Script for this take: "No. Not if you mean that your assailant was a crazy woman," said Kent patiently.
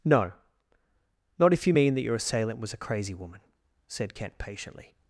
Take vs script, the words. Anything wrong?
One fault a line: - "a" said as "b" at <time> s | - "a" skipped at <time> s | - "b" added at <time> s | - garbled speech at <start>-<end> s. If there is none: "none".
none